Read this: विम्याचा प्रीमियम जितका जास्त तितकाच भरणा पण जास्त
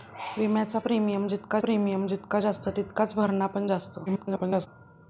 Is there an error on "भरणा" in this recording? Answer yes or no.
no